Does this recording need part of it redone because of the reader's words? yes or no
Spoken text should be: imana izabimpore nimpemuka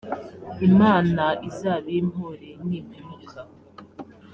no